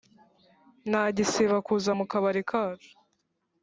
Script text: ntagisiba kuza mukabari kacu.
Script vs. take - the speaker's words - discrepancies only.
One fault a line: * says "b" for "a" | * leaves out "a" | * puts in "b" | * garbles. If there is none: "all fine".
all fine